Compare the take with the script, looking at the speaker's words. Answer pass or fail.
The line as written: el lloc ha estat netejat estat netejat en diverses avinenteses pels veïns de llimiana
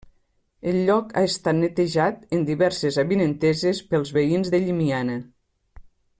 fail